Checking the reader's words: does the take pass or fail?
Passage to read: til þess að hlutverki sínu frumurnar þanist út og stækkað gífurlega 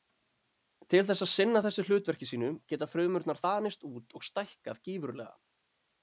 fail